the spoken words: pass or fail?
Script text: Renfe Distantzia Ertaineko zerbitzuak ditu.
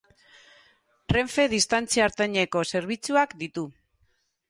pass